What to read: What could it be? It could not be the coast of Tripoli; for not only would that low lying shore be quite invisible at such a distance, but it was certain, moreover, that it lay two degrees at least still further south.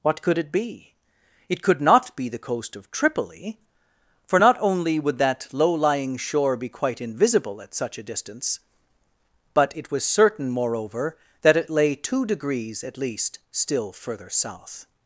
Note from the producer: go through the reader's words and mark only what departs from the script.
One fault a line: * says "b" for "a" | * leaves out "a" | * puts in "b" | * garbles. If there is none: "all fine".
all fine